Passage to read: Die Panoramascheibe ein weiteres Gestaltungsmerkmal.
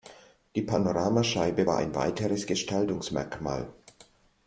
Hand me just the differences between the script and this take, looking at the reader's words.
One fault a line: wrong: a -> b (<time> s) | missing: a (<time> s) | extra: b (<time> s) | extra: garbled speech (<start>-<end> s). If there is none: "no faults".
extra: war (1.6 s)